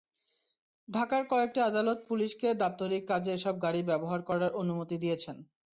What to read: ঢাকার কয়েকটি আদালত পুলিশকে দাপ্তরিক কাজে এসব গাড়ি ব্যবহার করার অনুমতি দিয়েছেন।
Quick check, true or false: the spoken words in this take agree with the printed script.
true